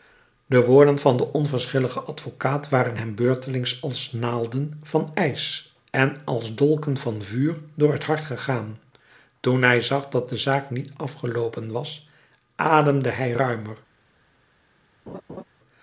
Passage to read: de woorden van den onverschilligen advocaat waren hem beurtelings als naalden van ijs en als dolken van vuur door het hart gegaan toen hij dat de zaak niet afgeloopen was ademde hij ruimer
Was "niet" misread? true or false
false